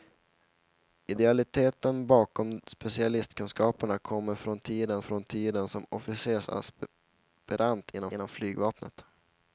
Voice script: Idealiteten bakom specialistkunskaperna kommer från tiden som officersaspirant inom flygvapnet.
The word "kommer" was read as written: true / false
true